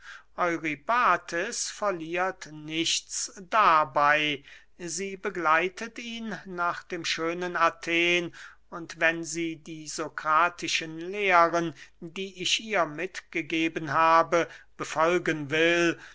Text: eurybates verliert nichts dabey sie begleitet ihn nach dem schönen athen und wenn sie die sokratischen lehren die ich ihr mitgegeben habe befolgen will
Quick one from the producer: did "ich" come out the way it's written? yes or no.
yes